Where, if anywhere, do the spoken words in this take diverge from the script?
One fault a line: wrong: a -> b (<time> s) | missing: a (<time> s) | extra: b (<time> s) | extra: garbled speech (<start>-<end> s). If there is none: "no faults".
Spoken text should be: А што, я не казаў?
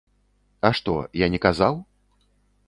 no faults